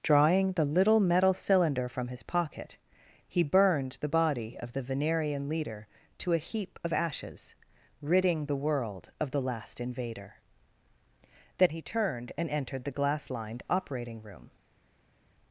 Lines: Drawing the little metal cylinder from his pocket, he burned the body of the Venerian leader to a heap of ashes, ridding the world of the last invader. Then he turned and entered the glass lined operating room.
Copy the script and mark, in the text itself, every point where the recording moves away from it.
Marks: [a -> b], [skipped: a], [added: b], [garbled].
Drawing the little metal cylinder from his pocket, he burned the body of the Venerian leader to a heap of ashes, ridding the world of the last invader. Then he turned and entered the glass lined operating room.